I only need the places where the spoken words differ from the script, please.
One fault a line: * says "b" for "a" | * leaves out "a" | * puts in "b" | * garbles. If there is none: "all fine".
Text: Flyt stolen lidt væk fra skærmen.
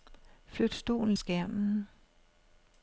* leaves out "lidt væk fra"